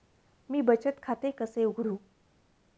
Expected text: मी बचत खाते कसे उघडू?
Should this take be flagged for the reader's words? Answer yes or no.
no